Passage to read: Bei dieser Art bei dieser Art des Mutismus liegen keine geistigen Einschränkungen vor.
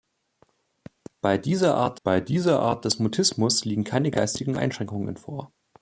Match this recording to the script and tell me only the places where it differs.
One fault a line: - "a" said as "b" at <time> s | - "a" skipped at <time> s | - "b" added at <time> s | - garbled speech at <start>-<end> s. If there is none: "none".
none